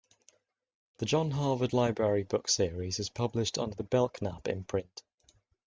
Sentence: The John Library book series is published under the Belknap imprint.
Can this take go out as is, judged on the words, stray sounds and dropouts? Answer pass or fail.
fail